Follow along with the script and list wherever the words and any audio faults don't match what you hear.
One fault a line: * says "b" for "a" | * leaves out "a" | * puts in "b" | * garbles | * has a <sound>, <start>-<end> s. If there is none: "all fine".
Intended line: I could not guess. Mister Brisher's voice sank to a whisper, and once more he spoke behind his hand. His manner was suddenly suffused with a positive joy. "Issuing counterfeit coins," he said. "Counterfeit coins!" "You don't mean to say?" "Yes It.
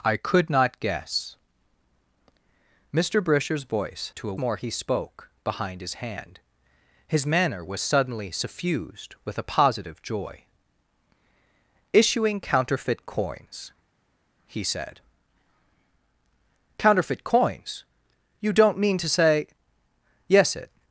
* leaves out "sank"
* leaves out "whisper and once"